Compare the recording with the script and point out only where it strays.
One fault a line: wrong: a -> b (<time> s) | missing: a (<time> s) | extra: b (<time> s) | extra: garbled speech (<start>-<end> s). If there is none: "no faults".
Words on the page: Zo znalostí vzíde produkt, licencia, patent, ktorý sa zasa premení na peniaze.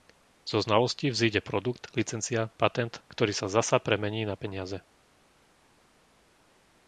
no faults